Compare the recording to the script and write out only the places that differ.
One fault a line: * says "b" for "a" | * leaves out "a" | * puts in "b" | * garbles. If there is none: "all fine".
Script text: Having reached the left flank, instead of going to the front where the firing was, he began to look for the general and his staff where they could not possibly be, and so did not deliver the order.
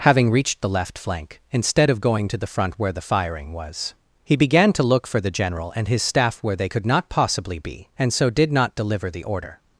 all fine